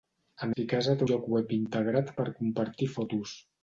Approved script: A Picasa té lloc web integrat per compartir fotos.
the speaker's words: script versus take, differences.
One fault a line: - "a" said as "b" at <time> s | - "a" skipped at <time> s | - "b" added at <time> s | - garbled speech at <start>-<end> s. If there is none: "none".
none